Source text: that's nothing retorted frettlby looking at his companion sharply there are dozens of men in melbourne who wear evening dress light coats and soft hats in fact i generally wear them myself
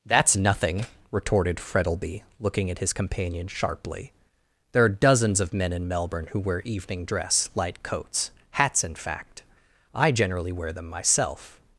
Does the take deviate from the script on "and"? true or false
true